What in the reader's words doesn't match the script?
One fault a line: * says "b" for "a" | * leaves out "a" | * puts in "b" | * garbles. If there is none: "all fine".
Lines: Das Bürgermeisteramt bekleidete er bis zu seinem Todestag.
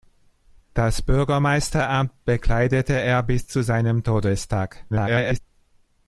* garbles